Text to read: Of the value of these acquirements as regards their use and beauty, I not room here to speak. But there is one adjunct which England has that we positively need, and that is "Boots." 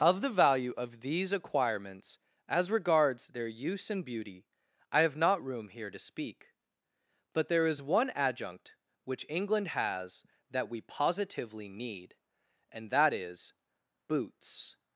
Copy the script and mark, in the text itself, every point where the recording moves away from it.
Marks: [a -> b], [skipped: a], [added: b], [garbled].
Of the value of these acquirements as regards their use and beauty, I [added: have] not room here to speak. But there is one adjunct which England has that we positively need, and that is "Boots."